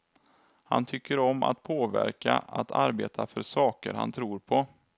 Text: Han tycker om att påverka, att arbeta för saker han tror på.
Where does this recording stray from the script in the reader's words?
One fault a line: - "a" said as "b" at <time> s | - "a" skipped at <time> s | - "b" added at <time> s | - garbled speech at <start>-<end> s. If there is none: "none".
none